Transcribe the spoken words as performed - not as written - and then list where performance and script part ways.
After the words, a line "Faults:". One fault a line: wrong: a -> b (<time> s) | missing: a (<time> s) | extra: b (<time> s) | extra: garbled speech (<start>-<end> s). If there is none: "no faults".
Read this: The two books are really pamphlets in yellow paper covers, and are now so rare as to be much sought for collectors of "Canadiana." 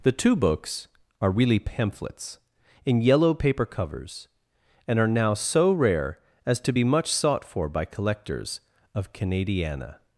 The two books are really pamphlets in yellow paper covers, and are now so rare as to be much sought for by collectors of "Canadiana."
Faults:
extra: by (7.7 s)